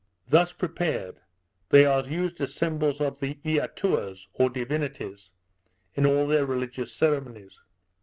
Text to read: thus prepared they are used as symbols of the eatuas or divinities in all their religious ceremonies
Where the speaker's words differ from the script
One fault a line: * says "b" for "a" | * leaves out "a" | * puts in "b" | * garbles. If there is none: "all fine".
all fine